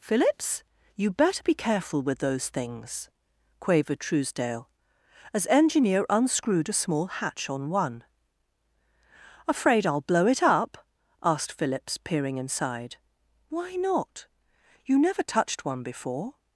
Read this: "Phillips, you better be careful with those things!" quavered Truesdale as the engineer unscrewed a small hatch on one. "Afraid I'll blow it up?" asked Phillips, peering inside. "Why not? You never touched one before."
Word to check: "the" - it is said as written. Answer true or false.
false